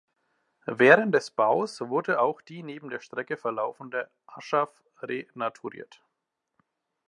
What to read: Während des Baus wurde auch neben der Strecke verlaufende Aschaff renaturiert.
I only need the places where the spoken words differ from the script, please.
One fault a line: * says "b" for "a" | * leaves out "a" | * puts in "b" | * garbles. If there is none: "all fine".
* puts in "die"